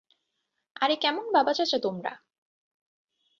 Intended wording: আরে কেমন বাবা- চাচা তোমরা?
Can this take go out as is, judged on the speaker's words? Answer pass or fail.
pass